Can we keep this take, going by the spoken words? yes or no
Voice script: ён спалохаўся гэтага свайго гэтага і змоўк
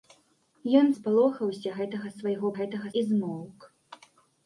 yes